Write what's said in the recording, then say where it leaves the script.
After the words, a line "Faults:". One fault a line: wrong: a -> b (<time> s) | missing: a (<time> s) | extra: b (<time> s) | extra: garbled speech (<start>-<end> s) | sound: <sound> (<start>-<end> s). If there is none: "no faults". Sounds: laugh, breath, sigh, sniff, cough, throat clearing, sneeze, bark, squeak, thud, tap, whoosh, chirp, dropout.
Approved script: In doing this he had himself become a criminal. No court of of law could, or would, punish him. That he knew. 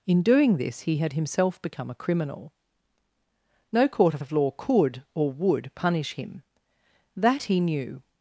In doing this he had himself become a criminal. No court of of law could, or would, punish him. That he knew.
Faults:
no faults